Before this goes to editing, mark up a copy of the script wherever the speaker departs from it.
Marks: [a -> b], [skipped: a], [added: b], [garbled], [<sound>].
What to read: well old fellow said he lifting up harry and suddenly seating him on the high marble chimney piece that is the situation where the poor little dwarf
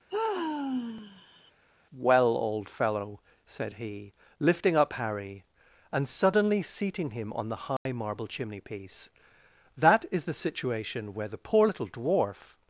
[sigh] well old fellow said he lifting up harry and suddenly seating him on the high [dropout] marble chimney piece that is the situation where the poor little dwarf